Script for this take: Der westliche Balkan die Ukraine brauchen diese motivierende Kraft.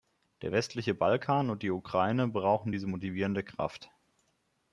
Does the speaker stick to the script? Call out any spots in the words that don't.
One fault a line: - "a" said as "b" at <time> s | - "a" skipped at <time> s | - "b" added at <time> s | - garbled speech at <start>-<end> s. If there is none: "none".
- "und" added at 1.5 s